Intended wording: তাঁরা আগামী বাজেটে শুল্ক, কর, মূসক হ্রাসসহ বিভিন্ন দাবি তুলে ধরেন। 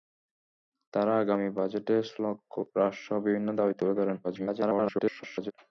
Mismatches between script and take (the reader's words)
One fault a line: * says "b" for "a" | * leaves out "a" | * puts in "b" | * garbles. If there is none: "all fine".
* leaves out "কর মূসক"
* garbles